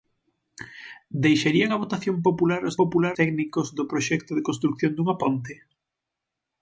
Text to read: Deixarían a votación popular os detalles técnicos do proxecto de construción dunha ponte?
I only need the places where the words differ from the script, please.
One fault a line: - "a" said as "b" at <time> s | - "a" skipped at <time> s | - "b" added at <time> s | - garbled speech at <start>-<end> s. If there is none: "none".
- "detalles" said as "popular" at 2.8 s